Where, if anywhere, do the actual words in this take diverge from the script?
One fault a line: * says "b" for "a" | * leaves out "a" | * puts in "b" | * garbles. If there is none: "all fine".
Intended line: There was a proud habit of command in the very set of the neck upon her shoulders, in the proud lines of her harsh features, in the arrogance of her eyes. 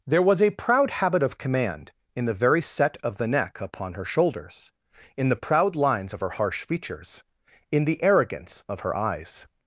all fine